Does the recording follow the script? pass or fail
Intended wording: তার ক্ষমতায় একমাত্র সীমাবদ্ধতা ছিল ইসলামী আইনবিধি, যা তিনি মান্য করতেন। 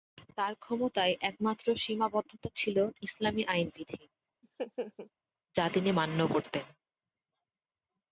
pass